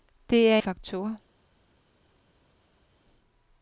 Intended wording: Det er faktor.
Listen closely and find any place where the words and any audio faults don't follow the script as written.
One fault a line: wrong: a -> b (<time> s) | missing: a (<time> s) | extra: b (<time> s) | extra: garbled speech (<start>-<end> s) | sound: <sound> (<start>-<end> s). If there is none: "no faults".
no faults